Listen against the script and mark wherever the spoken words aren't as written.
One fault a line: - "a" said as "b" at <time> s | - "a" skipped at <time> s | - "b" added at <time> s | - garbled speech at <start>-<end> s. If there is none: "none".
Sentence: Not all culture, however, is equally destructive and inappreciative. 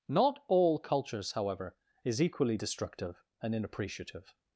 - "culture" said as "cultures" at 0.8 s